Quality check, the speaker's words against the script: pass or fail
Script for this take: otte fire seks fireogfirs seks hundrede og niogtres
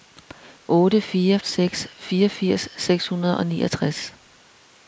pass